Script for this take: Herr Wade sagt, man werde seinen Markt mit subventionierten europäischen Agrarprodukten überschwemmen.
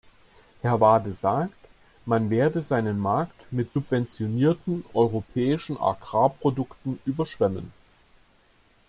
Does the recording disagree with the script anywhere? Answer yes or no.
no